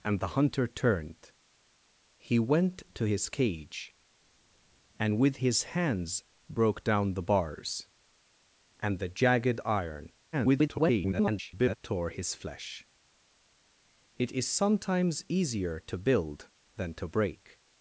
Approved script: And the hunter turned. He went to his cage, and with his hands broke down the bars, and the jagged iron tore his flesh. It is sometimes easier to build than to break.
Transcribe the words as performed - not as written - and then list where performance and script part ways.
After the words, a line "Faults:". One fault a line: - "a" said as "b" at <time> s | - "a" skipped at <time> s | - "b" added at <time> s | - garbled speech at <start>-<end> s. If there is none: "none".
And the hunter turned. He went to his cage, and with his hands broke down the bars, and the jagged iron [garbled] tore his flesh. It is sometimes easier to build than to break.
Faults:
- garbled speech at 10.3-11.8 s